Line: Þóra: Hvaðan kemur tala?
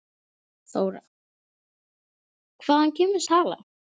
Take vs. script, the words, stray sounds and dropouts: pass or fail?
pass